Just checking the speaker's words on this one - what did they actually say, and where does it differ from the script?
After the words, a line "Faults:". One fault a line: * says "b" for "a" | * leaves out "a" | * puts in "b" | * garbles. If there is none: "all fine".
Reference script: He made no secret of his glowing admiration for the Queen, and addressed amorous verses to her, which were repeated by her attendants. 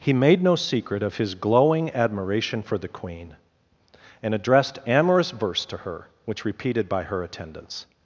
He made no secret of his glowing admiration for the Queen, and addressed amorous verse to her, which repeated by her attendants.
Faults:
* says "verse" for "verses"
* leaves out "were"